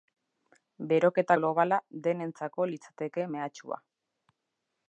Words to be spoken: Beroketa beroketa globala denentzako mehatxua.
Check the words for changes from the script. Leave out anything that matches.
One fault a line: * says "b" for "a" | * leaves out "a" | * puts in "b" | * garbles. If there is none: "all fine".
* leaves out "beroketa"
* puts in "litzateke"